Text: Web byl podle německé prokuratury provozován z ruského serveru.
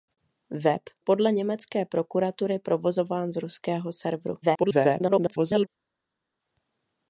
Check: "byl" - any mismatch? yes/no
yes